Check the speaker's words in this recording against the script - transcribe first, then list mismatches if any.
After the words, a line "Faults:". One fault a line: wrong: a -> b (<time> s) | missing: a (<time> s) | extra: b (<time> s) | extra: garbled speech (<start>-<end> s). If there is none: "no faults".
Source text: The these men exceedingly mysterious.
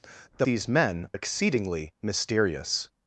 The these men exceedingly mysterious.
Faults:
no faults